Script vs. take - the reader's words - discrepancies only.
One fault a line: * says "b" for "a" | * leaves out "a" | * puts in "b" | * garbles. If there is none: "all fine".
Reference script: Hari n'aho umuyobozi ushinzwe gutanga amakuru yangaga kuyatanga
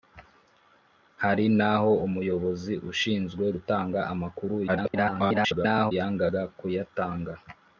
* garbles